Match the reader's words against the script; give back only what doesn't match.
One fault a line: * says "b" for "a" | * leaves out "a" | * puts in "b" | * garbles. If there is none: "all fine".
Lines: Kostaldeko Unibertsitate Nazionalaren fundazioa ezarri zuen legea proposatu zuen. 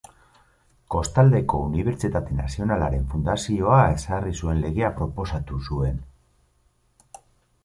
all fine